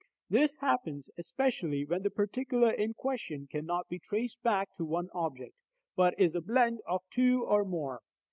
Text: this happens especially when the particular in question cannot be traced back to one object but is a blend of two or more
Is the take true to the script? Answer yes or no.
yes